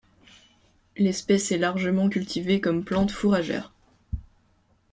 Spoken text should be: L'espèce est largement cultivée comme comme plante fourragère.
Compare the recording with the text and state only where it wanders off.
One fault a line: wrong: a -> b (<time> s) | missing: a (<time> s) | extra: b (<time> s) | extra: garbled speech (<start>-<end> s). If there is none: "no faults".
missing: comme (2.8 s)